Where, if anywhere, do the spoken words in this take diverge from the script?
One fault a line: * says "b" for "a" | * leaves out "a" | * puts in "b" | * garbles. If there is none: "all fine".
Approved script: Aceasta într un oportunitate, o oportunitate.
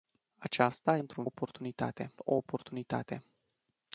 all fine